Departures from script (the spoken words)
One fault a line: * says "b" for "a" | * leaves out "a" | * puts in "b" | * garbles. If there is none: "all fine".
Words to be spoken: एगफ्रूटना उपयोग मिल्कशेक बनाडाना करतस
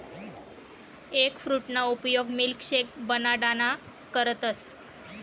all fine